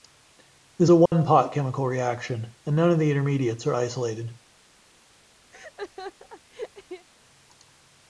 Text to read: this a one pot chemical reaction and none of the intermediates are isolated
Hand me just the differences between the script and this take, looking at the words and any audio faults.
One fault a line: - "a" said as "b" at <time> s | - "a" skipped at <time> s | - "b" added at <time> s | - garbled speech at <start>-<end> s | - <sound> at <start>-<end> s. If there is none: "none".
- dropout at 1.1-1.1 s
- laugh at 5.5-7.1 s